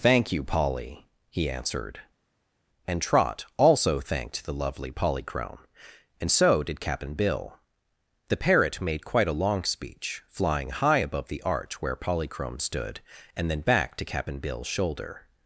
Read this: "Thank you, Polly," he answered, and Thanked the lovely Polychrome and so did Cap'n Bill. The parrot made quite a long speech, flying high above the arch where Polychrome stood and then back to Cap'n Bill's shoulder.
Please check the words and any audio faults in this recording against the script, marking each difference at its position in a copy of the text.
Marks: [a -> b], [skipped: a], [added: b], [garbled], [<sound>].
"Thank you, Polly," he answered, and [added: Trot also] Thanked the lovely Polychrome and so did Cap'n Bill. The parrot made quite a long speech, flying high above the arch where Polychrome stood and then back to Cap'n Bill's shoulder.